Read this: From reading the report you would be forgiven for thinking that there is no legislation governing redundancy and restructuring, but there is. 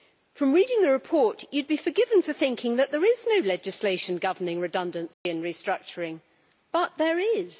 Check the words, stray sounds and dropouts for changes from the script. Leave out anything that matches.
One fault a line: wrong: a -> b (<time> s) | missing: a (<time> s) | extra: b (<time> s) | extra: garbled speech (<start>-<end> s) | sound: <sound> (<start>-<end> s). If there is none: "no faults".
sound: dropout (5.1-5.3 s)